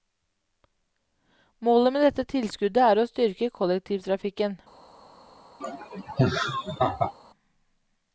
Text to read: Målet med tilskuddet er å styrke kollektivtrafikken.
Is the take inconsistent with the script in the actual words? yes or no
yes